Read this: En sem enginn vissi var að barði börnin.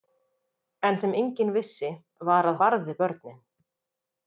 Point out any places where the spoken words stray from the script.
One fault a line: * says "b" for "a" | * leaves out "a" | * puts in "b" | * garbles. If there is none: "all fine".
all fine